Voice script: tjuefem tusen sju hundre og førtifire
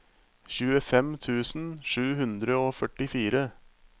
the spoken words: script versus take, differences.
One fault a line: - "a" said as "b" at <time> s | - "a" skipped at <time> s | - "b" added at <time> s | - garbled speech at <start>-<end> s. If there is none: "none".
none